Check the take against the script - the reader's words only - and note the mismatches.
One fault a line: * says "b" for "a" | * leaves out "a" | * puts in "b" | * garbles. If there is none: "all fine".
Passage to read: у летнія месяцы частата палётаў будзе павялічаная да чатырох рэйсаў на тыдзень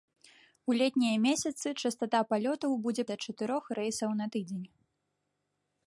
* leaves out "павялічаная"